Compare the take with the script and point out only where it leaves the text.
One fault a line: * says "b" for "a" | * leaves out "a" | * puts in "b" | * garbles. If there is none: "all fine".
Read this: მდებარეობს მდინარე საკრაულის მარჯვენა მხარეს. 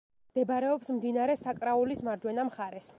all fine